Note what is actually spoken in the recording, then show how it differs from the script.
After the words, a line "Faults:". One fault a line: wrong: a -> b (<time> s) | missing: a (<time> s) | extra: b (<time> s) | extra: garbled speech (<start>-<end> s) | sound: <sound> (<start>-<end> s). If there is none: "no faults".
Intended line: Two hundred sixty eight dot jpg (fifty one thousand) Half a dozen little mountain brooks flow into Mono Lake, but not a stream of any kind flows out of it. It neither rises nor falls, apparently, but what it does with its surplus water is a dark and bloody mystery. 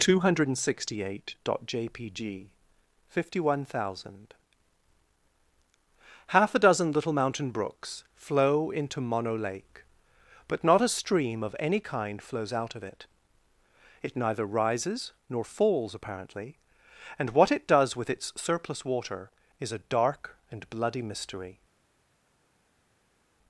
Two hundred sixty eight dot jpg (fifty one thousand) Half a dozen little mountain brooks flow into Mono Lake, but not a stream of any kind flows out of it. It neither rises nor falls, apparently, and what it does with its surplus water is a dark and bloody mystery.
Faults:
wrong: but -> and (17.2 s)